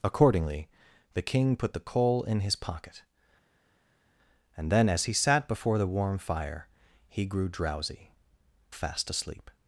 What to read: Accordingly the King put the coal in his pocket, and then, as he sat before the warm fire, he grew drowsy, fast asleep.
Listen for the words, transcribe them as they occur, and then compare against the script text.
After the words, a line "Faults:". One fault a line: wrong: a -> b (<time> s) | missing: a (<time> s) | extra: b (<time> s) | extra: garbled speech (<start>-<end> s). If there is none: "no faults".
Accordingly the King put the coal in his pocket, and then, as he sat before the warm fire, he grew drowsy, fast asleep.
Faults:
no faults